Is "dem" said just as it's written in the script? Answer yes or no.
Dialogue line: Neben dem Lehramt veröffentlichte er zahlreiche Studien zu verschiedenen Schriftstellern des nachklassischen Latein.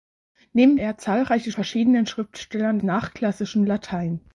no